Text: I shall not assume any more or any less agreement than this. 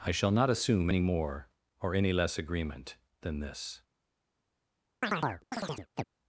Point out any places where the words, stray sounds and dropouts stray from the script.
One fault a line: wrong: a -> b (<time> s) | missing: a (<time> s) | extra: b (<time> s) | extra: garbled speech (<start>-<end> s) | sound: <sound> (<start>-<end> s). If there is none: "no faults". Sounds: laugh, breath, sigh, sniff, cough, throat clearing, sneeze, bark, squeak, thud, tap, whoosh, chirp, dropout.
sound: chirp (5.0-6.0 s)